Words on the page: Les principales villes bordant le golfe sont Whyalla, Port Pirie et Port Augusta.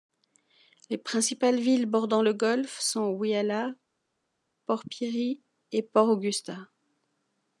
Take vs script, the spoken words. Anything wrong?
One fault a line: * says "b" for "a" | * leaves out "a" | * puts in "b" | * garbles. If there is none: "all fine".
all fine